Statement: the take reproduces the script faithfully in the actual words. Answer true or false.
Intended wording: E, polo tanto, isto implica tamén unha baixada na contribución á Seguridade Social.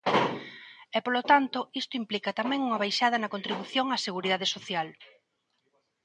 true